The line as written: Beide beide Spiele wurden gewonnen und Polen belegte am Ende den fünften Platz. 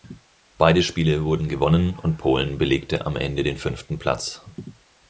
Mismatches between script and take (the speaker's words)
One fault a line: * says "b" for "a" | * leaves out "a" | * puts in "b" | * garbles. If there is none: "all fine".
* leaves out "beide"